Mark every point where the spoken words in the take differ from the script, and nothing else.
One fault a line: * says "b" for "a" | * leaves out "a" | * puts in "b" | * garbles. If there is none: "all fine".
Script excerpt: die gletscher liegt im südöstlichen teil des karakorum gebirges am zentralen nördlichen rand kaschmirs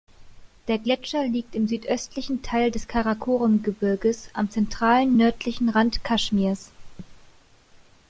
* says "der" for "die"